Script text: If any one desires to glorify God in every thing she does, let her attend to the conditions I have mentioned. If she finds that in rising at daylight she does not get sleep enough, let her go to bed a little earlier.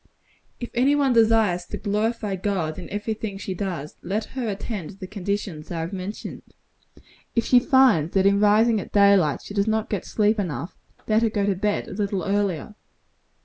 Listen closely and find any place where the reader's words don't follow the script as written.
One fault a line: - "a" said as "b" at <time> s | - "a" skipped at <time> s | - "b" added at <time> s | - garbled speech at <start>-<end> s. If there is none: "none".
none